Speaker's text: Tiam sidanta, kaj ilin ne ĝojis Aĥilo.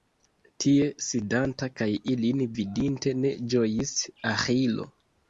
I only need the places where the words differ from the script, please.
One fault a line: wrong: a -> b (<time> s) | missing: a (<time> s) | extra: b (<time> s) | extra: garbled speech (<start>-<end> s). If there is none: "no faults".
wrong: Tiam -> Tie (0.6 s)
extra: vidinte (2.6 s)